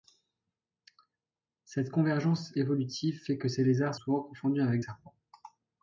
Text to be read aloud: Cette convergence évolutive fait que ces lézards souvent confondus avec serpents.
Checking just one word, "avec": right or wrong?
right